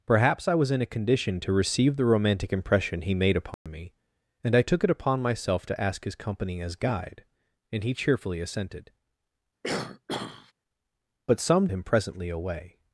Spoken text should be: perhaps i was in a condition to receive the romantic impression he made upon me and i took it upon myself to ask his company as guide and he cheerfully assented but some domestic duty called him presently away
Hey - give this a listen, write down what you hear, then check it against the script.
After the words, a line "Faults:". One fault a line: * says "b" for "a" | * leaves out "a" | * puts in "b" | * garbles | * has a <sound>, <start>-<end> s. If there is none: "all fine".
perhaps i was in a condition to receive the romantic impression he made upon me and i took it upon myself to ask his company as guide and he cheerfully assented but some him presently away
Faults:
* has a dropout, 3.5-3.7 s
* has a throat clearing, 9.6-10.5 s
* leaves out "domestic duty called"